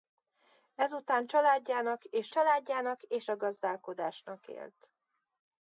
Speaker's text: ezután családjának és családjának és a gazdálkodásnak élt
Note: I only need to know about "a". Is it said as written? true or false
true